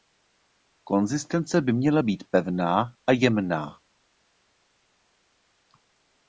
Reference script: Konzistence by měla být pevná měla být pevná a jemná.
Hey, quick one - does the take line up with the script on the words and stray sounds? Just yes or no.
no